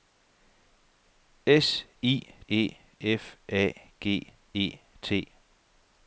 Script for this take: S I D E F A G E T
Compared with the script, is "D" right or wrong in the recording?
wrong